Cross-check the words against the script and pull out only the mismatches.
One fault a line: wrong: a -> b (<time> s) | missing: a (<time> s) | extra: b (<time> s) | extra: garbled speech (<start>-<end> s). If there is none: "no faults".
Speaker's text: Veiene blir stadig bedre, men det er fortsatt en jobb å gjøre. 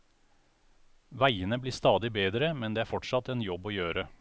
no faults